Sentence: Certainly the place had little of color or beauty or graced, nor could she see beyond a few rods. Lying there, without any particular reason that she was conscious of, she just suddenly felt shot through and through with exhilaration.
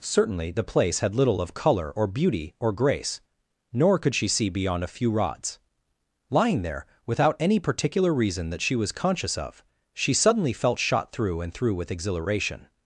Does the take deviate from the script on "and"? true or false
false